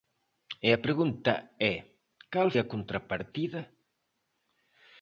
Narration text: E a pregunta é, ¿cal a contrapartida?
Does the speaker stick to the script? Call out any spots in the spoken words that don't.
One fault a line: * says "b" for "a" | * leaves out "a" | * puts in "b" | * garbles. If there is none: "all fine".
all fine